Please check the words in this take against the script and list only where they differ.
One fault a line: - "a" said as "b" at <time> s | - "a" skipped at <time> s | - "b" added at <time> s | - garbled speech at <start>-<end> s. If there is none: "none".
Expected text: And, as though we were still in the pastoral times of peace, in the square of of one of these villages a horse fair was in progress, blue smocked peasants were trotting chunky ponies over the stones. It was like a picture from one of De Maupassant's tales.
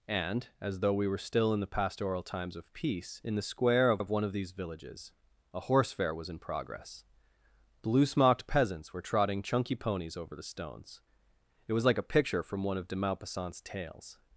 none